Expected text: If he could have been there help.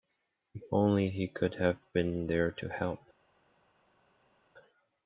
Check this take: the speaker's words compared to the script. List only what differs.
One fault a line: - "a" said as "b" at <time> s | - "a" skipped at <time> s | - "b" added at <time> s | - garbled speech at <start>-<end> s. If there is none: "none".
- "only" added at 0.7 s
- "to" added at 2.5 s